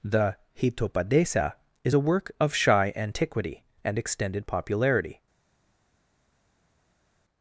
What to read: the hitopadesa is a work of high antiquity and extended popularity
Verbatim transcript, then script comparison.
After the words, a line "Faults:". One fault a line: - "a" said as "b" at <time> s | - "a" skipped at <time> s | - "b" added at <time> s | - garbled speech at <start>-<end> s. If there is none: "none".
the hitopadesa is a work of shy antiquity and extended popularity
Faults:
- "high" said as "shy" at 2.5 s